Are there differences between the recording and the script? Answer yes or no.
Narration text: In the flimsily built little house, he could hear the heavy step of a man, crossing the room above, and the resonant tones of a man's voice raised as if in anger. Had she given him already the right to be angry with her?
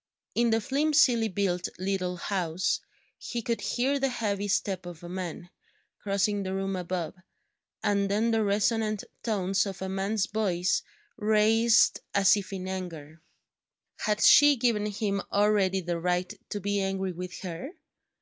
yes